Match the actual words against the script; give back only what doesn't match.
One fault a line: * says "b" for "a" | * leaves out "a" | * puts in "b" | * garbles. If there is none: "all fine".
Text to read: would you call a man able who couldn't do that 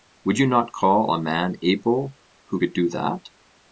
* puts in "not"
* says "could" for "couldn't"